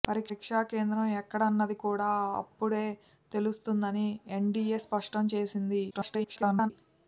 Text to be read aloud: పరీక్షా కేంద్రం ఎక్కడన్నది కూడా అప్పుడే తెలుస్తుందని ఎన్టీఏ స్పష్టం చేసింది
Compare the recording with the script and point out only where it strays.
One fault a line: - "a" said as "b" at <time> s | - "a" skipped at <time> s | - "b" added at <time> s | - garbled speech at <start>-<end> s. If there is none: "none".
- garbled speech at 5.9-6.7 s